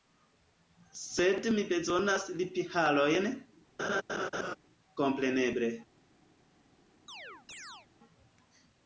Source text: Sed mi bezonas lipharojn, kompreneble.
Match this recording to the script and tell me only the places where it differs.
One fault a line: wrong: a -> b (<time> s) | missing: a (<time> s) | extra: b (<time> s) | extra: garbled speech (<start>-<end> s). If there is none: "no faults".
no faults